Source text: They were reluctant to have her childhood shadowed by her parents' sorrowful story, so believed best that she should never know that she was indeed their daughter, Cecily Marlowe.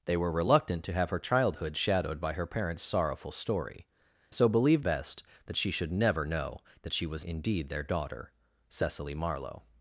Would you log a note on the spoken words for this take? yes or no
no